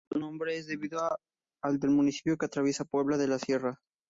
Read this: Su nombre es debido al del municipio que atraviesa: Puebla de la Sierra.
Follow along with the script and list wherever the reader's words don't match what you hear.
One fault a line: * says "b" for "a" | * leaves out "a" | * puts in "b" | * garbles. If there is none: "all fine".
all fine